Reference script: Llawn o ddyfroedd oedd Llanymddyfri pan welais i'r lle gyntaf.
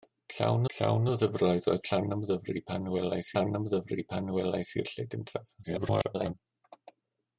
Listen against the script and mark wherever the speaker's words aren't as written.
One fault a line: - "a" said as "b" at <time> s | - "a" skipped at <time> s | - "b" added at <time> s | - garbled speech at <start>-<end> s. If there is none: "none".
- "llawn" added at 0.8 s
- "Llanymddyfri pan welais" added at 3.3 s
- garbled speech at 5.6-6.3 s